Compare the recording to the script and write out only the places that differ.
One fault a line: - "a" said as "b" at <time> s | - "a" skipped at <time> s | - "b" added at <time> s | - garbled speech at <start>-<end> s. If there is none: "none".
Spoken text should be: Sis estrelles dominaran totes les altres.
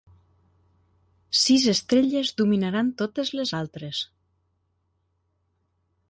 none